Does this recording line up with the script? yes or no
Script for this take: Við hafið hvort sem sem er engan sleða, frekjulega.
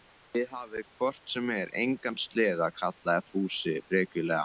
no